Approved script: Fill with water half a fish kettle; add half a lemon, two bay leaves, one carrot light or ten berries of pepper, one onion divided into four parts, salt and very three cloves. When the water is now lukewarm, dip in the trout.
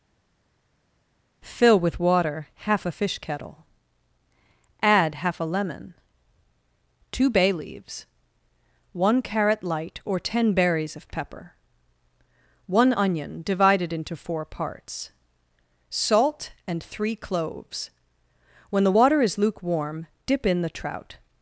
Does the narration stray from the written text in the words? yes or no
yes